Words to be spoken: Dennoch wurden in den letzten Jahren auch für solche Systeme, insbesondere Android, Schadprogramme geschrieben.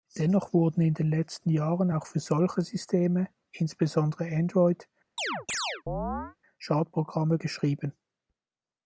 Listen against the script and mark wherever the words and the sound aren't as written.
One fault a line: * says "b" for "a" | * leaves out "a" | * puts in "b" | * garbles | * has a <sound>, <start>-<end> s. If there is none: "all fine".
* has a chirp, 5.2-6.4 s